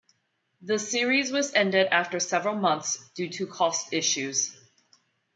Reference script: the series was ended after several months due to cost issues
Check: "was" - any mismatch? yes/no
no